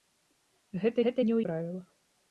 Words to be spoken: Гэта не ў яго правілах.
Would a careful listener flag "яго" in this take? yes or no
yes